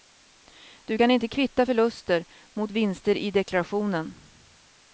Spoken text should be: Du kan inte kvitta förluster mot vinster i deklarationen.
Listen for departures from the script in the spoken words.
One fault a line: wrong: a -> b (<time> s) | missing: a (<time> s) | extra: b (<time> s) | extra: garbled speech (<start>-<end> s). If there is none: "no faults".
no faults